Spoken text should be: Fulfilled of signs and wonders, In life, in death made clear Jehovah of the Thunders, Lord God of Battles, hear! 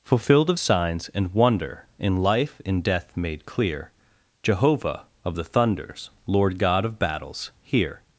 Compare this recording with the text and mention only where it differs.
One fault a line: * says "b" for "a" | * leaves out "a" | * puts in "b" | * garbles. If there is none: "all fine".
* says "wonder" for "wonders"